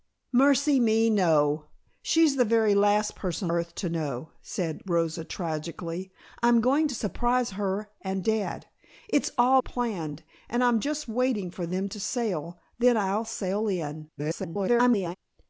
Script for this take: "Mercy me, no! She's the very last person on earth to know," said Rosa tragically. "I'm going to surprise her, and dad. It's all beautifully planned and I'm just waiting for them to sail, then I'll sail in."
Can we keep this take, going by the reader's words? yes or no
no